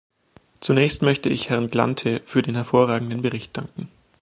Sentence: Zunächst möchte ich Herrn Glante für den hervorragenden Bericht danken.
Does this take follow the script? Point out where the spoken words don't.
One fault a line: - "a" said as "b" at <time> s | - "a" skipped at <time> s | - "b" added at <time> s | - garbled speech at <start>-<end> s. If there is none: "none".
none